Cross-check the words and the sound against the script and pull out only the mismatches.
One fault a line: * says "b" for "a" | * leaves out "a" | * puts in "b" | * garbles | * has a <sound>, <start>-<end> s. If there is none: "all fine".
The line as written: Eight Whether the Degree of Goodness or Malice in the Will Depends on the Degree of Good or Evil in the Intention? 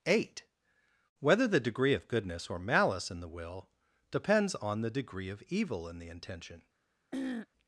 * leaves out "Good or"
* has a throat clearing, 7.1-7.5 s